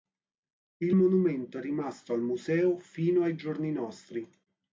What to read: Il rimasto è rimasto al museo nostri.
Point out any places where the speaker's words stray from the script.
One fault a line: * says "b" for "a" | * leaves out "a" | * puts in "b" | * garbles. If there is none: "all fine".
* says "monumento" for "rimasto"
* puts in "fino ai giorni"